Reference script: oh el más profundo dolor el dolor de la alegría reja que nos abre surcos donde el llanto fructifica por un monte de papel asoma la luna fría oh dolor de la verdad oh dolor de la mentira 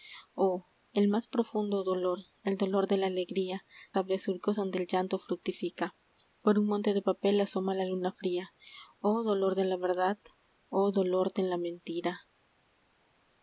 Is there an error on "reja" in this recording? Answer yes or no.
yes